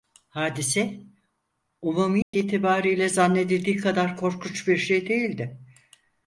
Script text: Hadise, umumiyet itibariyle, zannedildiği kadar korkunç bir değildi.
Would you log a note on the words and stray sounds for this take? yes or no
yes